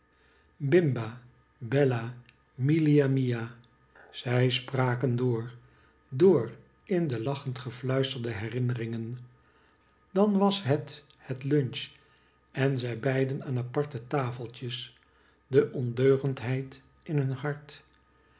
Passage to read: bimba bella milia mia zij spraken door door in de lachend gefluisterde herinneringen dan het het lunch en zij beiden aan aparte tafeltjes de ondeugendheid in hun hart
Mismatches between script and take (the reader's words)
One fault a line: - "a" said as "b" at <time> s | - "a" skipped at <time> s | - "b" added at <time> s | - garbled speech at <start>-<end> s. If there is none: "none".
- "was" added at 10.4 s